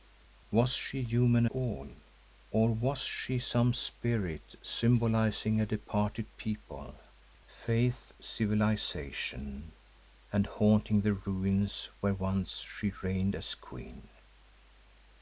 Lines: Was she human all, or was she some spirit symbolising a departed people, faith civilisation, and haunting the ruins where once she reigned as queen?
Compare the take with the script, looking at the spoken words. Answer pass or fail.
pass